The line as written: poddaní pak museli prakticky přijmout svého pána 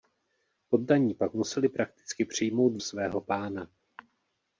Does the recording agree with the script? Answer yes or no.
yes